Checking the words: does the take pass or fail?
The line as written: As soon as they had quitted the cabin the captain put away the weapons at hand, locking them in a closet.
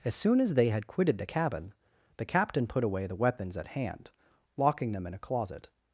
pass